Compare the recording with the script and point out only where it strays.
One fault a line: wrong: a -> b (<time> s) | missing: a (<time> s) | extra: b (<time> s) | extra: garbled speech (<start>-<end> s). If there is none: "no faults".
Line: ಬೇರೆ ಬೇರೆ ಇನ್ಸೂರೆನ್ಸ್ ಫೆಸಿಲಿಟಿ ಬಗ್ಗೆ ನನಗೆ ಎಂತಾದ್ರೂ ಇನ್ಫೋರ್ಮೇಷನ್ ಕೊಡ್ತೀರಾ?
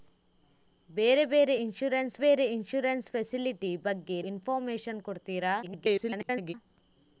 extra: ಬೇರೆ ಇನ್ಸೂರೆನ್ಸ್ (2.2 s)
missing: ನನಗೆ ಎಂತಾದ್ರೂ (4.2 s)
extra: garbled speech (5.6-6.5 s)